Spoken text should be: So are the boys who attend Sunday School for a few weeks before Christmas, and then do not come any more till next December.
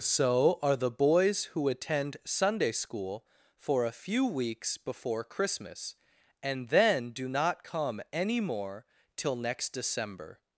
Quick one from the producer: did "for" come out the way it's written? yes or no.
yes